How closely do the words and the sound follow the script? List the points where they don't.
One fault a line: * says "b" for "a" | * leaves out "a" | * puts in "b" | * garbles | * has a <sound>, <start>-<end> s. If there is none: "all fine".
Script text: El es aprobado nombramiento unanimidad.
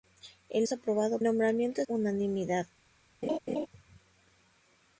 * has a laugh, 3.2-3.7 s